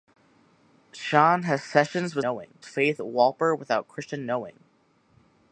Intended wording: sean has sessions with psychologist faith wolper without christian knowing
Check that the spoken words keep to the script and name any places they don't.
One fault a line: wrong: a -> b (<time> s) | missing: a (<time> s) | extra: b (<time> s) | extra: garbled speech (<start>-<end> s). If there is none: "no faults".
wrong: psychologist -> knowing (2.2 s)